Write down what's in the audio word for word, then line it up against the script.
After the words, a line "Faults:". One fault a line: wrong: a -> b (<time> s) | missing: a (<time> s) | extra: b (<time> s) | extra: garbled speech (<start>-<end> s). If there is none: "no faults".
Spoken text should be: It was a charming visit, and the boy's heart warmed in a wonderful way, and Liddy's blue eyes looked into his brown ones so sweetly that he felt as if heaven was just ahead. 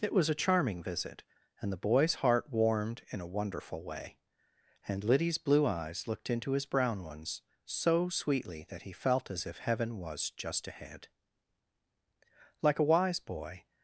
It was a charming visit, and the boy's heart warmed in a wonderful way, and Liddy's blue eyes looked into his brown ones so sweetly that he felt as if heaven was just ahead. Like a wise boy
Faults:
extra: Like a wise boy (12.6 s)